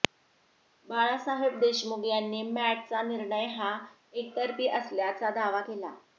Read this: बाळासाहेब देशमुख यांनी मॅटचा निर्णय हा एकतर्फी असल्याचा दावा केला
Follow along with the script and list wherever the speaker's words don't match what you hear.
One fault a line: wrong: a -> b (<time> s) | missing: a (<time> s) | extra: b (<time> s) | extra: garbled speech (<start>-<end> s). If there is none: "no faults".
no faults